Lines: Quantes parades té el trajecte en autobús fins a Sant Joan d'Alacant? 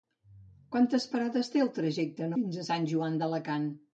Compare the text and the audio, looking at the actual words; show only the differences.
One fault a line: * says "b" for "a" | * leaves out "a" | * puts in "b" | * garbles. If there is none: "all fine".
* leaves out "autobús"